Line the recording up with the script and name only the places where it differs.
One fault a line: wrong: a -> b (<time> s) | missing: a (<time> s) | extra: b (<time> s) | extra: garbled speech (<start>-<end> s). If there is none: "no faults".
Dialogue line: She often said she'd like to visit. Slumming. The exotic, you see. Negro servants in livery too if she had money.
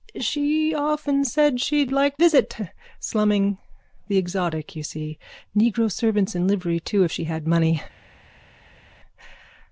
missing: to (2.2 s)